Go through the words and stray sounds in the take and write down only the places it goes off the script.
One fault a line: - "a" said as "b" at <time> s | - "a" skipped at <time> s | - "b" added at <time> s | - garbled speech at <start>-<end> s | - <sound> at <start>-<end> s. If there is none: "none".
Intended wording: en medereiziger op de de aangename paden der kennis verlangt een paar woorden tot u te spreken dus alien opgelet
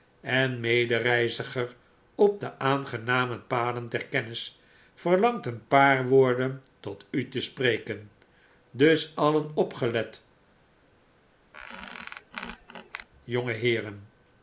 - "de" skipped at 2.6 s
- squeak at 11.5-13.1 s